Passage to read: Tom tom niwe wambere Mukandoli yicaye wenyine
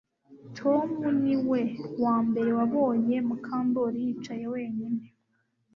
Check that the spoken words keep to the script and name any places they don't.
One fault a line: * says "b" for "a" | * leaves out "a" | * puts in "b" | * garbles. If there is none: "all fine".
* leaves out "tom"
* puts in "wabonye"